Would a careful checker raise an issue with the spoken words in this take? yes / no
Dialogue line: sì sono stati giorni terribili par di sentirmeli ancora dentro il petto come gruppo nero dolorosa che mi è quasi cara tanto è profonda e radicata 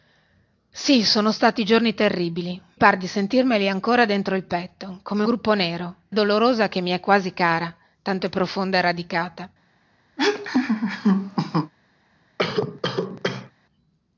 no